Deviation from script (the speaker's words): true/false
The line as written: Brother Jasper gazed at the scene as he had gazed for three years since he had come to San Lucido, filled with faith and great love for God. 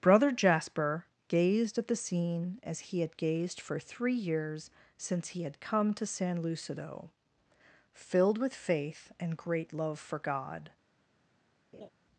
false